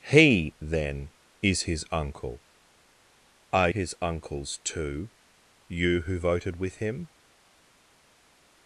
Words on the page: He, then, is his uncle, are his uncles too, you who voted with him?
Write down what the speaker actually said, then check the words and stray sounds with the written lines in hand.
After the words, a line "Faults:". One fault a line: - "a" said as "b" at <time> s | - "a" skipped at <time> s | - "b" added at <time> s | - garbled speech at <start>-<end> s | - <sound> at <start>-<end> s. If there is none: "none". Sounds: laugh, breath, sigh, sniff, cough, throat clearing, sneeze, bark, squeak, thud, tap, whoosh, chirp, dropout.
He, then, is his uncle, are his uncles too, you who voted with him?
Faults:
none